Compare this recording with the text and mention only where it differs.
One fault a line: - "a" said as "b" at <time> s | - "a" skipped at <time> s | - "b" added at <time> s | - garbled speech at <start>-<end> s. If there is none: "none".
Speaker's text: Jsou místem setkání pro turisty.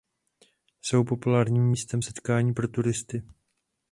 - "populárním" added at 1.0 s